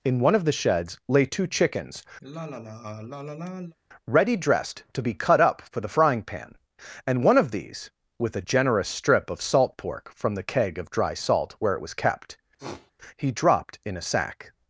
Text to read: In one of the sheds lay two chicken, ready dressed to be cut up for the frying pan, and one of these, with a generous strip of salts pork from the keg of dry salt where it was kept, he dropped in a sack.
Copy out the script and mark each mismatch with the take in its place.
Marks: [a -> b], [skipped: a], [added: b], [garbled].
In one of the sheds lay two [chicken, -> chickens] ready dressed to be cut up for the frying pan, and one of these, with a generous strip of [salts -> salt] pork from the keg of dry salt where it was kept, he dropped in a sack.